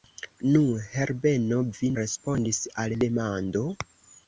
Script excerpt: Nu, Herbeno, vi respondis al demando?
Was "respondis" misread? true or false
false